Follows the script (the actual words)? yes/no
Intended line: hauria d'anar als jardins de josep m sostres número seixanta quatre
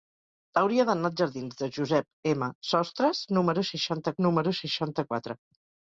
no